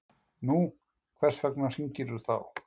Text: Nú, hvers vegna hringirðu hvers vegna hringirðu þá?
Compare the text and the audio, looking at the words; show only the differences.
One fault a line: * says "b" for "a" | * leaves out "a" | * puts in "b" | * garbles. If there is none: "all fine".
* leaves out "hvers vegna hringirðu"